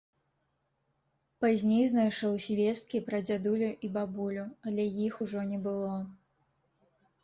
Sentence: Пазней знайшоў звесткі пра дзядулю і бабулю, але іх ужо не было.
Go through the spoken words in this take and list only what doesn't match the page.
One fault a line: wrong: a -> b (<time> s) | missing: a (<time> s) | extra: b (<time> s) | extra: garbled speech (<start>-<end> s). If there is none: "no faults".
no faults